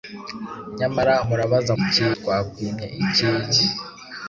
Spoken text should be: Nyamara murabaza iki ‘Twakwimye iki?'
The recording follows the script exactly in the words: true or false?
true